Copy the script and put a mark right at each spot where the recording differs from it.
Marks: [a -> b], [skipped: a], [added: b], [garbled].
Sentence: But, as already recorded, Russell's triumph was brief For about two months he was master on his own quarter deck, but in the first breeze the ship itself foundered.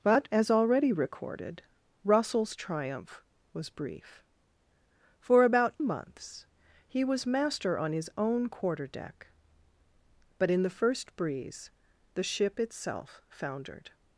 But, as already recorded, Russell's triumph was brief For about [skipped: two] months he was master on his own quarter deck, but in the first breeze the ship itself foundered.